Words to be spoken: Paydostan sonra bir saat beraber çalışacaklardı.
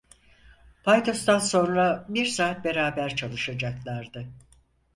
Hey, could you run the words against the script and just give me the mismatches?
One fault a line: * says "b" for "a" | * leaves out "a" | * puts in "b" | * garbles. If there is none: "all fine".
all fine